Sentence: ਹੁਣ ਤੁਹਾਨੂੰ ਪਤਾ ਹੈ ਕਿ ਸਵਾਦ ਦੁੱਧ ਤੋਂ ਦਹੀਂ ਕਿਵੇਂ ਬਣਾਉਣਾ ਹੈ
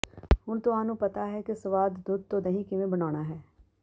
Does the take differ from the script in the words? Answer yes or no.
no